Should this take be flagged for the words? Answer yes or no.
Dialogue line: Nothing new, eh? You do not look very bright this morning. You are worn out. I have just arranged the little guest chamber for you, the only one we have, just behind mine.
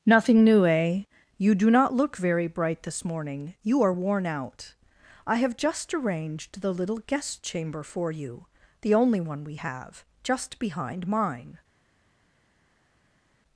no